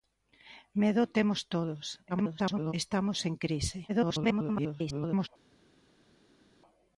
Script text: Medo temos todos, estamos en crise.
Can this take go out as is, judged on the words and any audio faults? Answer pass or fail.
fail